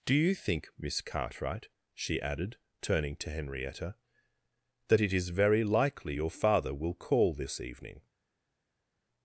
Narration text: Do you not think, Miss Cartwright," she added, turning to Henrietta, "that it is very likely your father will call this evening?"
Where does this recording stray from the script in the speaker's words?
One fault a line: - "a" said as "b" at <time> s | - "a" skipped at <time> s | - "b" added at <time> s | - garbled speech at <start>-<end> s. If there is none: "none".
- "not" skipped at 0.3 s